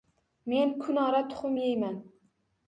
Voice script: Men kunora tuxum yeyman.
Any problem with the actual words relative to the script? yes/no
no